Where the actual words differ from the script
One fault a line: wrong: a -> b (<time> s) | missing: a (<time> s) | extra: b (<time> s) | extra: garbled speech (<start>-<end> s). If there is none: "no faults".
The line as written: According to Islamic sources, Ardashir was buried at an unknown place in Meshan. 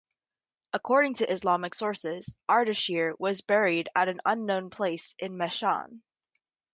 no faults